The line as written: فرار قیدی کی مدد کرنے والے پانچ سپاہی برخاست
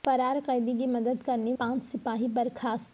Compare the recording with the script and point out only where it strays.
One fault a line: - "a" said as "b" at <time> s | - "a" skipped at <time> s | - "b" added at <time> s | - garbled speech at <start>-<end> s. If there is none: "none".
- "والے" skipped at 1.5 s